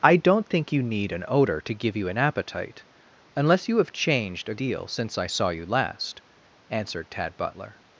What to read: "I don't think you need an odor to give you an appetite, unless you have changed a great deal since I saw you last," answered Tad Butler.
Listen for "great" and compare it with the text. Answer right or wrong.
wrong